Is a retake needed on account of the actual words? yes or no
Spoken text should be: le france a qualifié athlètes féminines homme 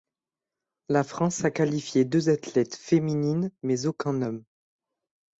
yes